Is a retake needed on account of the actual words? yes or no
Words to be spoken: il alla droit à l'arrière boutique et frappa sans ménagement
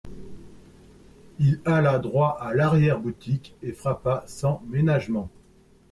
no